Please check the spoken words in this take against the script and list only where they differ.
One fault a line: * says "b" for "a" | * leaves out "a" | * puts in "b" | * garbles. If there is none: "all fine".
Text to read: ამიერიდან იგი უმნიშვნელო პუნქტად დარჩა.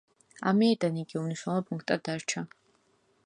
all fine